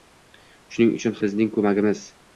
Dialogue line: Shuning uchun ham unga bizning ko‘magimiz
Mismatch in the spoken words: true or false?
true